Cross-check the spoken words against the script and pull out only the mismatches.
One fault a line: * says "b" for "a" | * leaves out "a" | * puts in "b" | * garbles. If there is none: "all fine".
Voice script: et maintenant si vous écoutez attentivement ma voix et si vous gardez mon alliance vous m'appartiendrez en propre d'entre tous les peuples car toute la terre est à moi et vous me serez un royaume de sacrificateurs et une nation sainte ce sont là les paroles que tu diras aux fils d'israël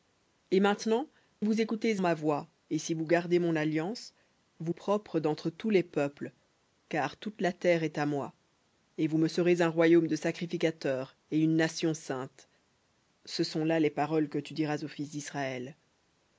* leaves out "si"
* leaves out "attentivement"
* leaves out "m'appartiendrez en"